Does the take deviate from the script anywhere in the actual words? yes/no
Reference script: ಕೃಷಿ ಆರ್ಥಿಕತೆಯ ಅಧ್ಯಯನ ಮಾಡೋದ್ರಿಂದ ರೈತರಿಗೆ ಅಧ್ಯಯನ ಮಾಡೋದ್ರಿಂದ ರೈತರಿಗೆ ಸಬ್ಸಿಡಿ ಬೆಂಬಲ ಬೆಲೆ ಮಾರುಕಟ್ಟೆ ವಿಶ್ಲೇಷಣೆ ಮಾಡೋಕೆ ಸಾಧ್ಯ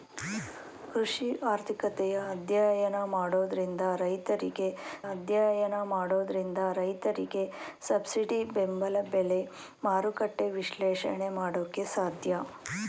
no